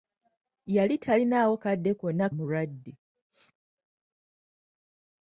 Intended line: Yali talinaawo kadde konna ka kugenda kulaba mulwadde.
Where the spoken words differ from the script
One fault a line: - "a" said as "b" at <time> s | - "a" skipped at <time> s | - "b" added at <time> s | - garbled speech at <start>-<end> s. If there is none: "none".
- "ka kugenda kulaba" skipped at 2.2 s